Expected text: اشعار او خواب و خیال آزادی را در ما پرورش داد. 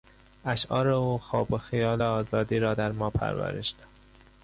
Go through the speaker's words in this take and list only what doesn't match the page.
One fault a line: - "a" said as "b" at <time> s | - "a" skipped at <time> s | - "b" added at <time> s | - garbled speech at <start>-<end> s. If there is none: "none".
none